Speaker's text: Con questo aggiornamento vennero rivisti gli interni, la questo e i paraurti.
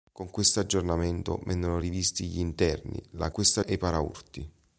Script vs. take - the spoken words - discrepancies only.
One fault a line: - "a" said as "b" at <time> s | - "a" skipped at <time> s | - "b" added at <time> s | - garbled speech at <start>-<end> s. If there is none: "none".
none